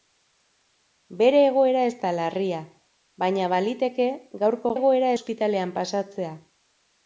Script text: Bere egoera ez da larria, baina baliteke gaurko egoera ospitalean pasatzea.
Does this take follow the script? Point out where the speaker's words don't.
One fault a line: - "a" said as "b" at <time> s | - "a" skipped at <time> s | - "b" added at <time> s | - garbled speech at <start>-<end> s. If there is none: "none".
none